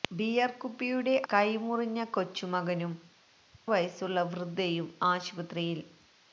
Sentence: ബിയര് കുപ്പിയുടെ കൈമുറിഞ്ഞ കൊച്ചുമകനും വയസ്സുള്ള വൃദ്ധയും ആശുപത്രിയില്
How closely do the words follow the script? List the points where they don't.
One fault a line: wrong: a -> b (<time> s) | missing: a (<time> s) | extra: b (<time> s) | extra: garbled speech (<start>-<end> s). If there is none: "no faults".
no faults